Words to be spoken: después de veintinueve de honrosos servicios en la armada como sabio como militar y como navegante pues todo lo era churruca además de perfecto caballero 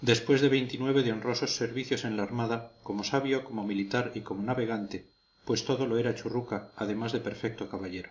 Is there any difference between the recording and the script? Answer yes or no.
no